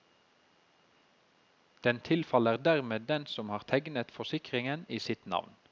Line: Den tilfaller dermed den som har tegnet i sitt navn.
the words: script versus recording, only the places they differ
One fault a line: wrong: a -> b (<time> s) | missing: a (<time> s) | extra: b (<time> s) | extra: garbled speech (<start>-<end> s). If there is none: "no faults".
extra: forsikringen (4.1 s)